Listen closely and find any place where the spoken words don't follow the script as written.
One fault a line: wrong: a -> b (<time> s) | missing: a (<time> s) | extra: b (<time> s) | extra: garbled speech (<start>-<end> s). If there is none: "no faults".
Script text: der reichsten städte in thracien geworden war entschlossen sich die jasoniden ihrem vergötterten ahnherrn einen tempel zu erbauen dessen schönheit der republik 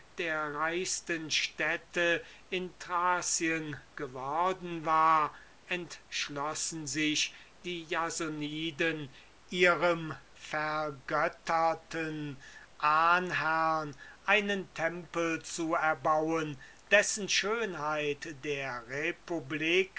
no faults